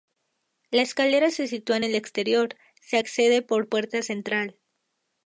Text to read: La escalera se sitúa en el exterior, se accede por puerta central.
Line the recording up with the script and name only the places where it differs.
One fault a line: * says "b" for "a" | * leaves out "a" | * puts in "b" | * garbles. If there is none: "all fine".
all fine